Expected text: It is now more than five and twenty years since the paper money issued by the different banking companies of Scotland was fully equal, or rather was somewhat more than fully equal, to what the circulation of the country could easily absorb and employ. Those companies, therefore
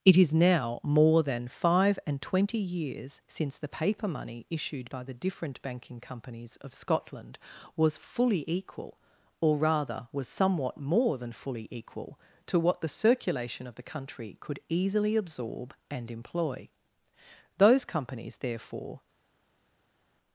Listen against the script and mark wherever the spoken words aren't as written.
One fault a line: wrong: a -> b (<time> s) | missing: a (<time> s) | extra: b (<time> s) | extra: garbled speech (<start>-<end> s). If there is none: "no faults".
no faults